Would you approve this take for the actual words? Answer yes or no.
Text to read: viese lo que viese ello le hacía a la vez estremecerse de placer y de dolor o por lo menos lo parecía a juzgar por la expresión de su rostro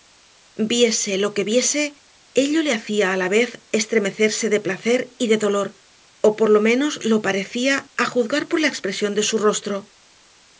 yes